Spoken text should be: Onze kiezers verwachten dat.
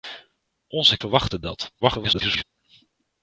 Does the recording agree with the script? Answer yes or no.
no